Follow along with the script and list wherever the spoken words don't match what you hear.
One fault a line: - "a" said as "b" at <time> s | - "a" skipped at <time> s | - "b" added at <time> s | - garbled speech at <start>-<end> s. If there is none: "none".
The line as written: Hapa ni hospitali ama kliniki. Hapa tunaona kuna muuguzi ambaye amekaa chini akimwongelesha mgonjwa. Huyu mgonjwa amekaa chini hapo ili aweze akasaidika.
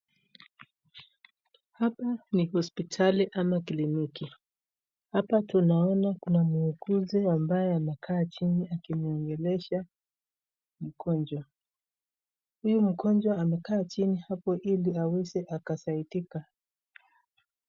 none